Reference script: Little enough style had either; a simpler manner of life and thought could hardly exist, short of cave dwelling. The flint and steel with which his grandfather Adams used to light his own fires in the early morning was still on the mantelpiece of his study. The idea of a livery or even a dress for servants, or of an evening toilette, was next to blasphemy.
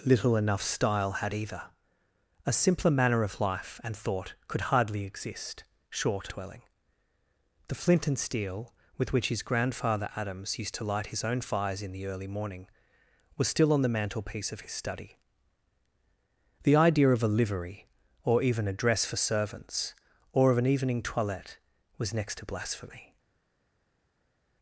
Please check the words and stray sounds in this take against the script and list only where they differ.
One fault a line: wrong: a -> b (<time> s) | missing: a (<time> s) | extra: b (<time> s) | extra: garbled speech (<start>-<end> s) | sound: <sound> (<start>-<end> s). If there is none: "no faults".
missing: of cave (6.3 s)